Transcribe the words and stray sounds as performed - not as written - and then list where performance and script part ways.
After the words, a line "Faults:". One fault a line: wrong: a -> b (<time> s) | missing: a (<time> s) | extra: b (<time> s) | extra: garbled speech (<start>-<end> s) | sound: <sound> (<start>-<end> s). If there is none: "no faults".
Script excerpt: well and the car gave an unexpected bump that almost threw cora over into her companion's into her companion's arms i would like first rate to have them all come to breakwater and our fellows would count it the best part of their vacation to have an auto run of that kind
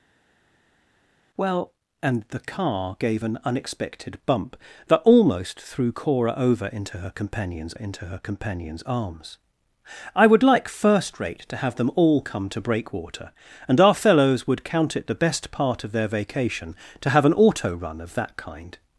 well and the car gave an unexpected bump that almost threw cora over into her companion's into her companion's arms i would like first rate to have them all come to breakwater and our fellows would count it the best part of their vacation to have an auto run of that kind
Faults:
no faults